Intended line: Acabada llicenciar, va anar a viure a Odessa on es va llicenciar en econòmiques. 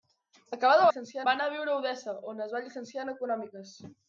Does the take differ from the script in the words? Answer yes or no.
no